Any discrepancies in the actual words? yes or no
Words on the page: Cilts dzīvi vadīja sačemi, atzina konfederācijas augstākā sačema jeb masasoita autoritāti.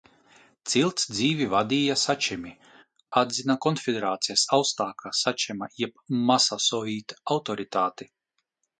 no